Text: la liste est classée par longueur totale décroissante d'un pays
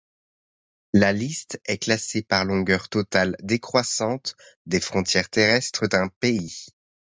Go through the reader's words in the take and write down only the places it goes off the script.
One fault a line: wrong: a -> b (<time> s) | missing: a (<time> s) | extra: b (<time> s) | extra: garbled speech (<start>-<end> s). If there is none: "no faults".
extra: des frontières terrestres (4.7 s)